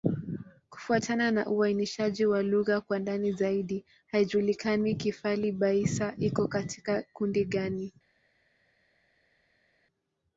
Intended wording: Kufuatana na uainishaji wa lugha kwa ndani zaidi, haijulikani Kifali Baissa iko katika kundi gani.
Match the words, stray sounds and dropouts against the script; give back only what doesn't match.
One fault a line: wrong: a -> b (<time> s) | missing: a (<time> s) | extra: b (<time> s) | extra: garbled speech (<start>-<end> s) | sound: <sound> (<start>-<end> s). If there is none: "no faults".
no faults